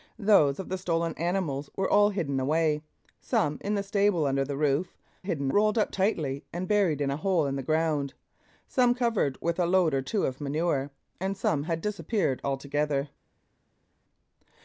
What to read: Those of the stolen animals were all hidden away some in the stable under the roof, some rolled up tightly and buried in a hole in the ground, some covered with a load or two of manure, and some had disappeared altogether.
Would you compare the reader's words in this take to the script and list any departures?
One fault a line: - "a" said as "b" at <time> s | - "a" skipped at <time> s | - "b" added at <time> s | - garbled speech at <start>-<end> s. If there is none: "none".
- "some" said as "hidden" at 5.2 s